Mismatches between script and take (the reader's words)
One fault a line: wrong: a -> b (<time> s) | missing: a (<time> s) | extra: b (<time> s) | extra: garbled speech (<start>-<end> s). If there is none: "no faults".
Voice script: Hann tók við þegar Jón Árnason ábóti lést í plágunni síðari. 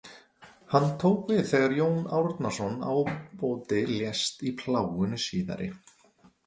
no faults